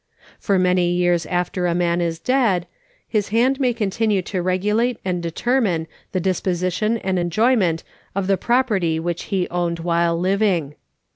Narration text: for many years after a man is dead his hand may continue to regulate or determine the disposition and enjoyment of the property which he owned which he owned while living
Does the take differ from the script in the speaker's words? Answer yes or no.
yes